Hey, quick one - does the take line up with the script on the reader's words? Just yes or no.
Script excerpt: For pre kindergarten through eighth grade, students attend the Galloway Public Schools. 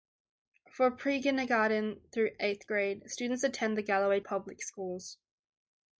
yes